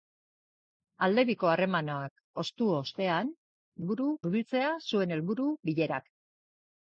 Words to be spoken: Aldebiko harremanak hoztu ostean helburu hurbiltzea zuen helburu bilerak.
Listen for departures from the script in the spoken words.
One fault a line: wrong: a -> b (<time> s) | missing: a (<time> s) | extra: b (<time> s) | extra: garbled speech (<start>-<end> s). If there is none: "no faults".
no faults